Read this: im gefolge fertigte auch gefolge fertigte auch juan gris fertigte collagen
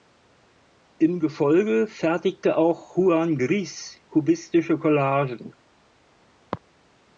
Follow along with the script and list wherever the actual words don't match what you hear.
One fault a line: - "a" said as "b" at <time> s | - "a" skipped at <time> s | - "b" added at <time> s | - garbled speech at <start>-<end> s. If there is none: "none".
- "gefolge fertigte auch" skipped at 3.0 s
- "fertigte" said as "kubistische" at 4.1 s